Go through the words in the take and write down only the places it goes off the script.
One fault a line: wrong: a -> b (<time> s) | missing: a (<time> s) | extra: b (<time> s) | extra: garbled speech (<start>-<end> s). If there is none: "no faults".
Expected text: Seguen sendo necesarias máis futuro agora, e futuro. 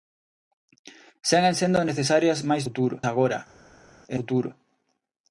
no faults